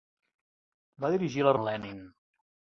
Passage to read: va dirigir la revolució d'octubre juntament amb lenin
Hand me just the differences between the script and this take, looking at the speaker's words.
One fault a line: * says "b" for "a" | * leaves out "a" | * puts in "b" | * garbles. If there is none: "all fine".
* leaves out "revolució d'octubre juntament"